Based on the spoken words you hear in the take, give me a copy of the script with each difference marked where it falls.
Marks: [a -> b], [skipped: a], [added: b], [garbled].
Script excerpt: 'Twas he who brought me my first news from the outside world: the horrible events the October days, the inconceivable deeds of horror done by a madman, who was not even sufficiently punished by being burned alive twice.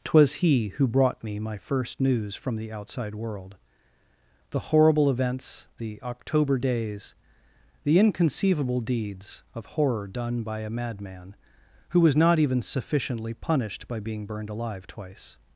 'Twas he who brought me my first news from the outside world: the horrible events the October days, the inconceivable deeds of horror done by a madman, who was not even sufficiently punished by being burned alive twice.